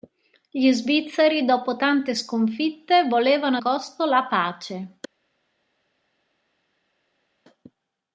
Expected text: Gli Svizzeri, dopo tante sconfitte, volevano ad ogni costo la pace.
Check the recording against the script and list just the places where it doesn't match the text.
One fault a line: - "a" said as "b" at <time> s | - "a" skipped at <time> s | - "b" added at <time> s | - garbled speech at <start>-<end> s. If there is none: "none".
- "ad ogni" skipped at 3.6 s